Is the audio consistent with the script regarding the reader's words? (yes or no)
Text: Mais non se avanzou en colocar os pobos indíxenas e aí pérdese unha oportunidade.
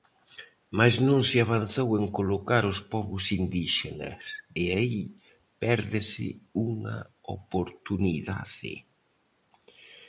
yes